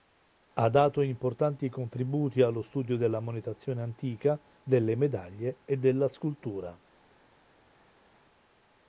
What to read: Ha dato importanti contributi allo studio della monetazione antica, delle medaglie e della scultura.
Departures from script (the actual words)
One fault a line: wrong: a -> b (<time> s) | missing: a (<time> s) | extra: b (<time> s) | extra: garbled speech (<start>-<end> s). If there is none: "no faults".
no faults